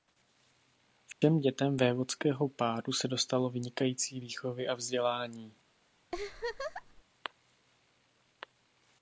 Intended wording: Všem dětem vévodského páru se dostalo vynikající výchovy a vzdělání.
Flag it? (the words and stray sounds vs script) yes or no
yes